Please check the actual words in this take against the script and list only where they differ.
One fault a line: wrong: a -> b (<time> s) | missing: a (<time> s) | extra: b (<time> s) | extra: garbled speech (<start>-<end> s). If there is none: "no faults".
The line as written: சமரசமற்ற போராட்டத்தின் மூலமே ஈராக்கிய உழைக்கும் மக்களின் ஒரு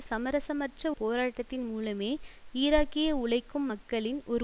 no faults